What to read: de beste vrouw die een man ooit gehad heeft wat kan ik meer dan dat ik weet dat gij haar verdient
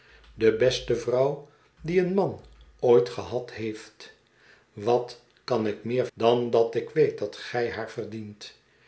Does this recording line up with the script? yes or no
yes